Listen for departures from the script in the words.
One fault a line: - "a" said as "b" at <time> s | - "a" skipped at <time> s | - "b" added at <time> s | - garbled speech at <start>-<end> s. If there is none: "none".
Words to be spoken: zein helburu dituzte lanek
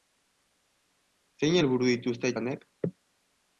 none